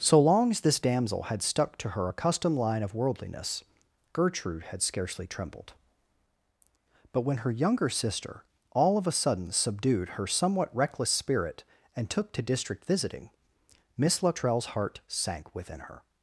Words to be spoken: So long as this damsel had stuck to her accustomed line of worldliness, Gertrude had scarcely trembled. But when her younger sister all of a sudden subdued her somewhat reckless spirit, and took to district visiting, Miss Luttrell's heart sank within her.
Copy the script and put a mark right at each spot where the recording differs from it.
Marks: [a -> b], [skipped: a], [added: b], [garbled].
So long as this damsel had stuck to her accustomed line of worldliness, Gertrude had scarcely trembled. But when her younger sister all of a sudden subdued her somewhat reckless spirit, and took to district visiting, Miss Luttrell's heart sank within her.